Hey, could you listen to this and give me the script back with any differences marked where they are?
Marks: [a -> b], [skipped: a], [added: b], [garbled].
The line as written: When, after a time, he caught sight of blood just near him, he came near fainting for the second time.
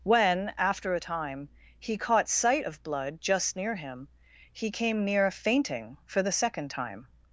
When, after a time, he caught sight of blood just near him, he came near fainting for the second time.